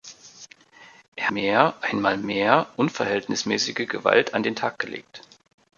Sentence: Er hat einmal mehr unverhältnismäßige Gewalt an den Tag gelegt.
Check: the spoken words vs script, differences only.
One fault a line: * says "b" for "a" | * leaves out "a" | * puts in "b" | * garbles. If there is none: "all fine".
* says "mehr" for "hat"